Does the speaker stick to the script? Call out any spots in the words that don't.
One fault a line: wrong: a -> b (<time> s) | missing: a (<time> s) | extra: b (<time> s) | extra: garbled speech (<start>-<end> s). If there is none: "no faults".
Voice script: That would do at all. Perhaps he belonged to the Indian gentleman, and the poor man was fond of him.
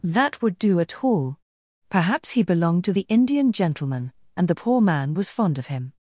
no faults